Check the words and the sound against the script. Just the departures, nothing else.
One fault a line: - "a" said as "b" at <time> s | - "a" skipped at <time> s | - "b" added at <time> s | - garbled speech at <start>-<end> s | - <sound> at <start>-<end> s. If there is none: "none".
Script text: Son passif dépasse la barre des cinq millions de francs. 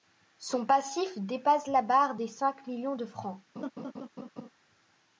- laugh at 3.6-4.5 s